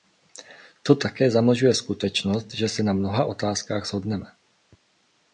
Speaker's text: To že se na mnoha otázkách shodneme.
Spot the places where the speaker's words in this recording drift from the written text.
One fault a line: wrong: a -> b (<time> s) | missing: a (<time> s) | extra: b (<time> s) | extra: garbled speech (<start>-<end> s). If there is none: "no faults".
extra: také zamlžuje skutečnost (0.9 s)